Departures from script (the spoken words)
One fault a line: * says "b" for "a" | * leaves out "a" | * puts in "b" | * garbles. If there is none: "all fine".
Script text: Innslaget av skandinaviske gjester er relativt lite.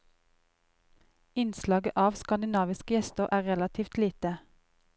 all fine